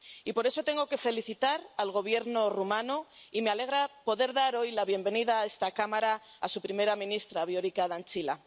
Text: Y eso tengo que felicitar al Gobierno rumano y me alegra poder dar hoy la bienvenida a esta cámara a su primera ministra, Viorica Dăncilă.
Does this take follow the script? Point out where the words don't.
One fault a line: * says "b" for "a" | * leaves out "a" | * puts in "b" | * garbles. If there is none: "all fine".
* puts in "por"